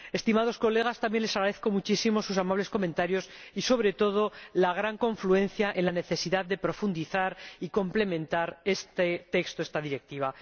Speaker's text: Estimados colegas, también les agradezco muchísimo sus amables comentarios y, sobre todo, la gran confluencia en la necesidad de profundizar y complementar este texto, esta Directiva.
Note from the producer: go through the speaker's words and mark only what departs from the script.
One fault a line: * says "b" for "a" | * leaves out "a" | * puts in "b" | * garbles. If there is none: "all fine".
all fine